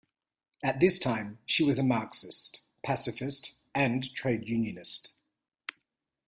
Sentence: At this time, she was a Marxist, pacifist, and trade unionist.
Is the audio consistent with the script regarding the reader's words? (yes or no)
yes